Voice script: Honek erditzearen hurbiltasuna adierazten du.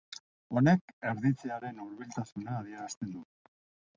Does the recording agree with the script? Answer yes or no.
yes